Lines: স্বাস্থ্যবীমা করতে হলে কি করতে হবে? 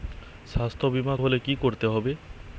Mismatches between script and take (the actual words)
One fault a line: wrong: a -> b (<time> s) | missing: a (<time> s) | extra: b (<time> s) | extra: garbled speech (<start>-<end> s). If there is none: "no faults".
missing: করতে (1.1 s)